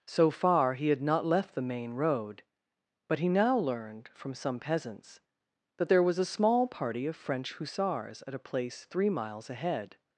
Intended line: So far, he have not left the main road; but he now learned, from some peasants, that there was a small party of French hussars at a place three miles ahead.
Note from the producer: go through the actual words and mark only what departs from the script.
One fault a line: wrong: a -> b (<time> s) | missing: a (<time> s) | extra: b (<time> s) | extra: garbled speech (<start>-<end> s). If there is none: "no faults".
wrong: have -> had (0.9 s)